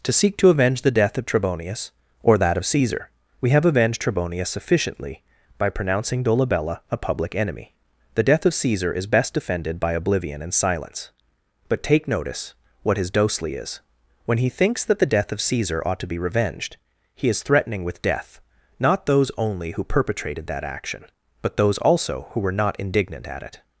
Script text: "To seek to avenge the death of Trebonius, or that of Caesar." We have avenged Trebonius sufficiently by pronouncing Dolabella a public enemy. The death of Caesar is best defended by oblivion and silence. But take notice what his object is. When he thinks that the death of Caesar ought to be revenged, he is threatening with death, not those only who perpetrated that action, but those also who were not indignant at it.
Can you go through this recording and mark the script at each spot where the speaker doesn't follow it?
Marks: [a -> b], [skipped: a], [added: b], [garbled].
"To seek to avenge the death of Trebonius, or that of Caesar." We have avenged Trebonius sufficiently by pronouncing Dolabella a public enemy. The death of Caesar is best defended by oblivion and silence. But take notice what his [object -> dosely] is. When he thinks that the death of Caesar ought to be revenged, he is threatening with death, not those only who perpetrated that action, but those also who were not indignant at it.